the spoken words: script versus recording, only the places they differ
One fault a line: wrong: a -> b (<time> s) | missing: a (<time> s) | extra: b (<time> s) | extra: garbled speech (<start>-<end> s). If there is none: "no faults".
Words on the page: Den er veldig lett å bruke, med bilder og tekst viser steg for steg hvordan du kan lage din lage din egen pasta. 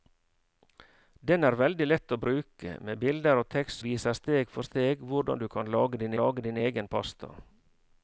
no faults